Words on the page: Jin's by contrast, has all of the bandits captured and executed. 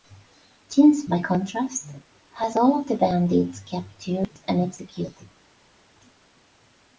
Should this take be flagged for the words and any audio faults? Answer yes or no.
no